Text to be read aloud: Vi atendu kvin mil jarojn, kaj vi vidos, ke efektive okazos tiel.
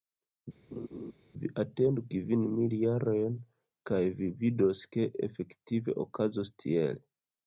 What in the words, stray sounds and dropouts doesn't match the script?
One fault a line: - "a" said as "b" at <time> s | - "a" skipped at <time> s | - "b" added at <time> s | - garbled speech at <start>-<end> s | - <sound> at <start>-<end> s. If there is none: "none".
- laugh at 0.7-1.1 s